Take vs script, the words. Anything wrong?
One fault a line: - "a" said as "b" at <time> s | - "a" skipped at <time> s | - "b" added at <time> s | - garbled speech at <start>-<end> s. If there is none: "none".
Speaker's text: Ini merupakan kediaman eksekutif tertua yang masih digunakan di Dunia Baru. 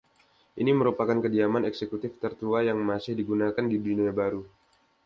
none